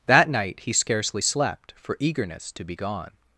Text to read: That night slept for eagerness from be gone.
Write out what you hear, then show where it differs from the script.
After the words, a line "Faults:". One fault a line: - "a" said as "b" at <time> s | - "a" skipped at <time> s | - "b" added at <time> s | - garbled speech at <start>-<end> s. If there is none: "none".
That night he scarcely slept for eagerness to be gone.
Faults:
- "he scarcely" added at 0.6 s
- "from" said as "to" at 2.5 s